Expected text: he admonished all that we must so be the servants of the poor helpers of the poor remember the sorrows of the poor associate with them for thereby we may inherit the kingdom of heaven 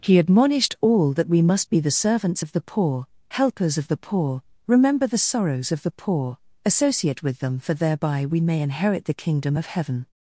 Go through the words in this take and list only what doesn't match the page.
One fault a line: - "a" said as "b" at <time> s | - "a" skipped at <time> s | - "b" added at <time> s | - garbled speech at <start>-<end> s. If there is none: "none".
- "so" skipped at 1.7 s